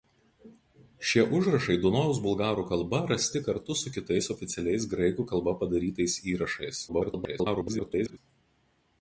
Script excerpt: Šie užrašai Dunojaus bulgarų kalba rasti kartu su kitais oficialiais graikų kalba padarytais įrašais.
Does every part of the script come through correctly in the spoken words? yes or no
no